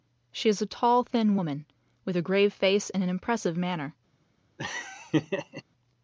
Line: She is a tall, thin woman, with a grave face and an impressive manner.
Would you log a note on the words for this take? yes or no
no